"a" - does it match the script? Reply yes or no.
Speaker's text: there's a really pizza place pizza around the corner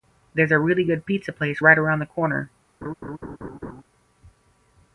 yes